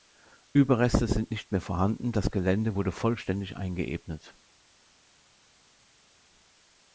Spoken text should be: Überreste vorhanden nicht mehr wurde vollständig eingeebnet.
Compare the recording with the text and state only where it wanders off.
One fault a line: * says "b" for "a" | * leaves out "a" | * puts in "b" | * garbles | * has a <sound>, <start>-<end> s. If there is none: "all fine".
* says "sind" for "vorhanden"
* puts in "vorhanden das Gelände"